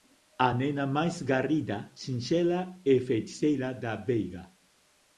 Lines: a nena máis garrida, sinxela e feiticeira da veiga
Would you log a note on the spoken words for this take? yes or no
no